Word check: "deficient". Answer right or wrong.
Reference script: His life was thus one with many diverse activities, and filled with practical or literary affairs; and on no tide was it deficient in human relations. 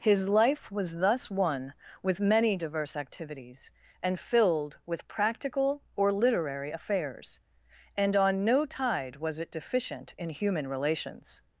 right